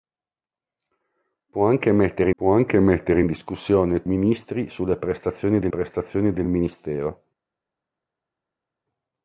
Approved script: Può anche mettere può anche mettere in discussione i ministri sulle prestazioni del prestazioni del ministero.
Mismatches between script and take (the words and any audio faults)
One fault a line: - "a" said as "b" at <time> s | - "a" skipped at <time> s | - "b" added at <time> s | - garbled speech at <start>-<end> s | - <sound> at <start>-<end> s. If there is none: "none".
none